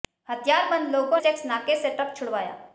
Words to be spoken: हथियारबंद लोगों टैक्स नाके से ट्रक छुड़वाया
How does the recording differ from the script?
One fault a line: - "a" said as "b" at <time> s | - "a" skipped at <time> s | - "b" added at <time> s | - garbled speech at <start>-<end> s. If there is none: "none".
none